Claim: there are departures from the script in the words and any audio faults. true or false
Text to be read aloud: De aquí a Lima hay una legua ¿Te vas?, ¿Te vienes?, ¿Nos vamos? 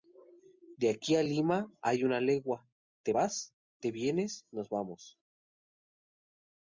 false